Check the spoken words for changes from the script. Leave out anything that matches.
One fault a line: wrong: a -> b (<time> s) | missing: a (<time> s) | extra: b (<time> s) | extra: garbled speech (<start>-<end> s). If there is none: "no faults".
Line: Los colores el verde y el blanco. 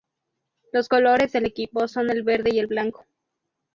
extra: del equipo son (1.3 s)